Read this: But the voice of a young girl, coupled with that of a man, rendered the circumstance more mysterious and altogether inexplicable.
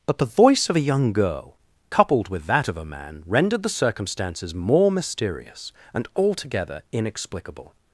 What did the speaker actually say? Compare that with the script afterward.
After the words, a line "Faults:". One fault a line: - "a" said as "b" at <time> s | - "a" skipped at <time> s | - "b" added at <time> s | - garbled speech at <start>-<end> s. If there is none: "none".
But the voice of a young girl, coupled with that of a man, rendered the circumstances more mysterious and altogether inexplicable.
Faults:
- "circumstance" said as "circumstances" at 3.7 s